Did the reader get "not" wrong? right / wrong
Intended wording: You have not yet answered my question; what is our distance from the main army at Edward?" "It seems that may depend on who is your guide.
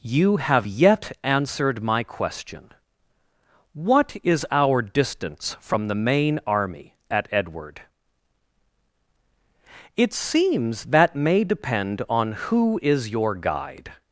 wrong